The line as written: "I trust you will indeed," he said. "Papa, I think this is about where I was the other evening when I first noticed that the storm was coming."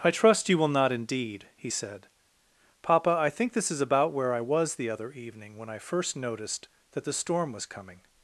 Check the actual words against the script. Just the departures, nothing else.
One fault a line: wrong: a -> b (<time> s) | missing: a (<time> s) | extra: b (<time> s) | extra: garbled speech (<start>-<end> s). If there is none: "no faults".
extra: not (0.7 s)